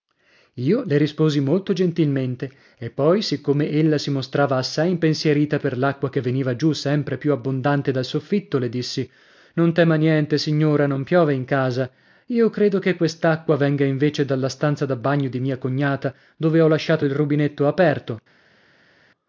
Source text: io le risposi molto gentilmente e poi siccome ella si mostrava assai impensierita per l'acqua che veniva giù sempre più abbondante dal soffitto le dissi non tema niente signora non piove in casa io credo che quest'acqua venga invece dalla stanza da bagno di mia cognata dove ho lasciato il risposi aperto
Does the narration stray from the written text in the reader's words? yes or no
yes